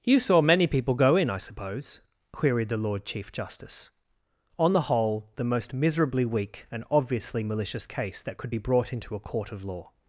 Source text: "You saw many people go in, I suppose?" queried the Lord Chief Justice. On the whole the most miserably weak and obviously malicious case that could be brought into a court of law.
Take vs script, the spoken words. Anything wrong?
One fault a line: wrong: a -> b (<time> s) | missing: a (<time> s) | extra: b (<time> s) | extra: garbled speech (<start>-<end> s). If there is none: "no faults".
no faults